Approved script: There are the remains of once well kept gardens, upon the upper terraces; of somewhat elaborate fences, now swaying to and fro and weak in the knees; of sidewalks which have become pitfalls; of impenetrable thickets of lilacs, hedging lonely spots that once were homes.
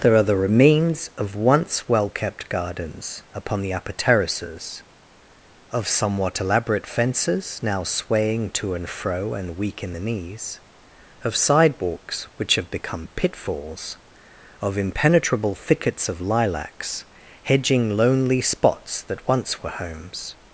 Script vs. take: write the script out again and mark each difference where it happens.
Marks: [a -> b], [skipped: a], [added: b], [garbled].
There are the remains of once well kept gardens, upon the upper terraces; of somewhat elaborate fences, now swaying to and fro and weak in the knees; of sidewalks which have become pitfalls; of impenetrable thickets of lilacs, hedging lonely spots that once were homes.